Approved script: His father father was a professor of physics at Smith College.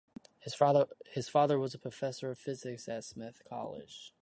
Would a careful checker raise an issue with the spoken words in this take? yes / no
yes